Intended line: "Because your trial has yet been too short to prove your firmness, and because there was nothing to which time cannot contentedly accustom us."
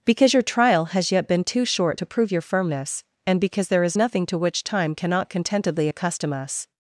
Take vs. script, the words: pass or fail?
fail